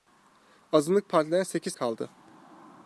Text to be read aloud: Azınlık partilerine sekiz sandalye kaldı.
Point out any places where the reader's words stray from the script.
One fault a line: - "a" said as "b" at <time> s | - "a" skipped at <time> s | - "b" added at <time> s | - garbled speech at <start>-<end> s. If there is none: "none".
- "sandalye" skipped at 1.7 s